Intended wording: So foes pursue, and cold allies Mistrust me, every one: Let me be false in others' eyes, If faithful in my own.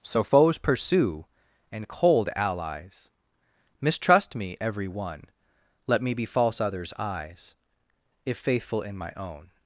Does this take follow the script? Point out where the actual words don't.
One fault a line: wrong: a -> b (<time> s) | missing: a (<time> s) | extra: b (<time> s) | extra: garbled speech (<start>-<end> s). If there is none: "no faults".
missing: in (6.6 s)